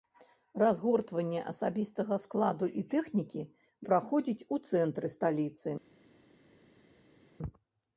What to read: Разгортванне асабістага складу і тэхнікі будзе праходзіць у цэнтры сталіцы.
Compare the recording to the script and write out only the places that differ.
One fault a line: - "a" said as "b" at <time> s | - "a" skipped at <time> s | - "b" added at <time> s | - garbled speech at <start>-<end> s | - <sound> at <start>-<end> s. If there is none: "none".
- "будзе" skipped at 3.4 s